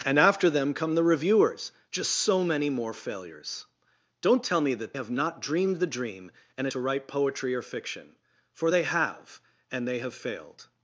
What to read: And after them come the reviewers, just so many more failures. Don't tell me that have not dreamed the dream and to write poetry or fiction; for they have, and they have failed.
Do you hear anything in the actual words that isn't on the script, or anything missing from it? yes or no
no